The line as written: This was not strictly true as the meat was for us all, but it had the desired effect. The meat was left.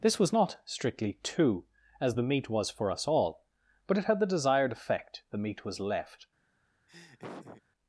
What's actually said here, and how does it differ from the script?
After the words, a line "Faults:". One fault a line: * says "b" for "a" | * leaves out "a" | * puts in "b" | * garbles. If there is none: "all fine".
This was not strictly two as the meat was for us all, but it had the desired effect. The meat was left.
Faults:
* says "two" for "true"